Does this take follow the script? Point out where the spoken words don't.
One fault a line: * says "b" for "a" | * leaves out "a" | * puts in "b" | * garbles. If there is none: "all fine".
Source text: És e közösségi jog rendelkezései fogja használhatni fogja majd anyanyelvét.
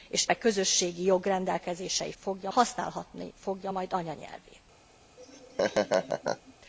all fine